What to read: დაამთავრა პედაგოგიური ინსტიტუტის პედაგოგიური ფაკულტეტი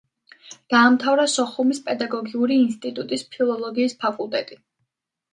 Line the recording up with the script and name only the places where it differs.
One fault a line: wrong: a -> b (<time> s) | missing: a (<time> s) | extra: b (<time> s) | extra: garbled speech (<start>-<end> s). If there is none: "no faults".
extra: სოხუმის (1.3 s)
wrong: პედაგოგიური -> ფილოლოგიის (3.4 s)